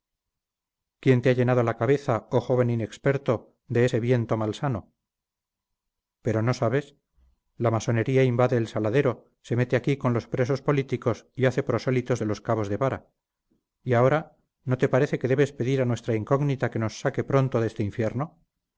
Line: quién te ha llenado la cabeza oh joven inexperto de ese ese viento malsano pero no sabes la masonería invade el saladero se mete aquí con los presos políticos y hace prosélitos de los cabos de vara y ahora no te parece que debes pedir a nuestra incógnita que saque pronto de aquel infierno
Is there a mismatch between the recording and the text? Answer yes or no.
yes